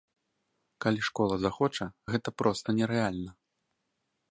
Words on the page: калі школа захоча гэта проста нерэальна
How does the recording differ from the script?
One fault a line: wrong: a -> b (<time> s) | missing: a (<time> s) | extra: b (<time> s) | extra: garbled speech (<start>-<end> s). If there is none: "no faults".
no faults